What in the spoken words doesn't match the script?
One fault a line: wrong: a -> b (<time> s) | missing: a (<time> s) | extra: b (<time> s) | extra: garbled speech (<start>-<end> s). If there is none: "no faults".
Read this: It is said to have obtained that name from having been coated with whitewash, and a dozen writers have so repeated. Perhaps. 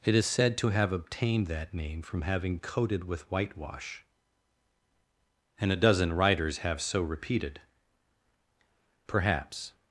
missing: been (2.6 s)